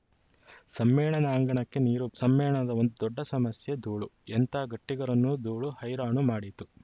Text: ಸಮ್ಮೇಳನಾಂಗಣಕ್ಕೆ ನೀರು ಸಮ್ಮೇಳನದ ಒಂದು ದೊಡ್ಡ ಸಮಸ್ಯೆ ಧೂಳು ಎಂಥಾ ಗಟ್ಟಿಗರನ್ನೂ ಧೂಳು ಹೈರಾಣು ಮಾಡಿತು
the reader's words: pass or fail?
pass